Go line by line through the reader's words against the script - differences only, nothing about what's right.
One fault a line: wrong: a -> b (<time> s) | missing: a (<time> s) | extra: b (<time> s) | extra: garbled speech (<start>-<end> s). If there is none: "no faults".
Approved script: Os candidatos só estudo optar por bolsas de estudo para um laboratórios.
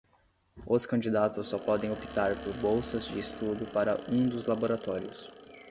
wrong: estudo -> podem (1.6 s)
extra: dos (4.3 s)